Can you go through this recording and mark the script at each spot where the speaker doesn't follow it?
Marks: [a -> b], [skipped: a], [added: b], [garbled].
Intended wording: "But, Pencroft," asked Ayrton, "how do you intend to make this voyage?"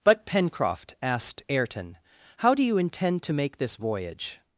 "But, Pencroft," asked Ayrton, "how do you intend to make this voyage?"